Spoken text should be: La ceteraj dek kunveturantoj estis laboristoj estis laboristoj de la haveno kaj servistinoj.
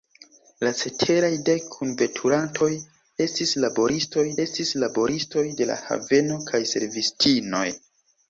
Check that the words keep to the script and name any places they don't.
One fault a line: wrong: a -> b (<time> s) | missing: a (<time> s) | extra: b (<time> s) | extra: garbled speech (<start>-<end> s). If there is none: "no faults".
no faults